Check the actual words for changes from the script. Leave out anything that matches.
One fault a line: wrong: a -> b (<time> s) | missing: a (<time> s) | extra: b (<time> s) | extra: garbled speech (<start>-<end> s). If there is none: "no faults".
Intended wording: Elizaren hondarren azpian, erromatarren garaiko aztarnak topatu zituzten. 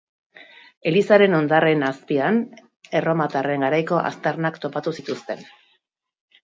no faults